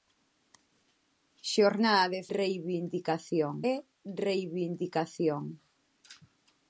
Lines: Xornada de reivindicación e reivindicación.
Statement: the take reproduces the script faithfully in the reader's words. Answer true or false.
true